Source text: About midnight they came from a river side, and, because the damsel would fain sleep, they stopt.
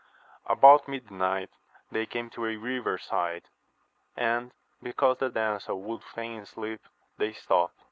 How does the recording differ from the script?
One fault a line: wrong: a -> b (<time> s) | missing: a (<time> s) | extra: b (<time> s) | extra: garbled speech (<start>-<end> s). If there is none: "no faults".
wrong: from -> to (2.3 s)